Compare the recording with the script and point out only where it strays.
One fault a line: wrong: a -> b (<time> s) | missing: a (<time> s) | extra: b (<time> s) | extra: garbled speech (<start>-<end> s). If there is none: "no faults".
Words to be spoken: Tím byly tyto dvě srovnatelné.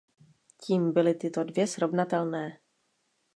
no faults